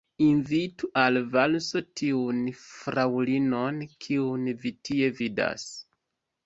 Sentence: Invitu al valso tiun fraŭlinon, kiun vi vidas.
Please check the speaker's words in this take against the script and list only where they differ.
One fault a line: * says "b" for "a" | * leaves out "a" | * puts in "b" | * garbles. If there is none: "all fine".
* puts in "tie"